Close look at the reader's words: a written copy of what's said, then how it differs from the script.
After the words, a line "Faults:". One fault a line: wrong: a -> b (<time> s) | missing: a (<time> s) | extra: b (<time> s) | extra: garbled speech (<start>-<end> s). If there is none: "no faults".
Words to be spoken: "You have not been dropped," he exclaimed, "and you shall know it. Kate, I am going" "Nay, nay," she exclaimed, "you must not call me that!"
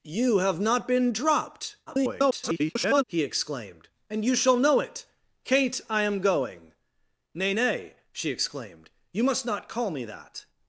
"You have not been dropped," [garbled] he exclaimed, "and you shall know it. Kate, I am going" "Nay, nay," she exclaimed, "you must not call me that!"
Faults:
extra: garbled speech (1.9-3.0 s)